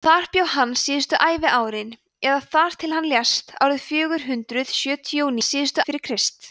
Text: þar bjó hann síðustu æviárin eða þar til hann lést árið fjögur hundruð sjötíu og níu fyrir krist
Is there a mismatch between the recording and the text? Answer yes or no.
yes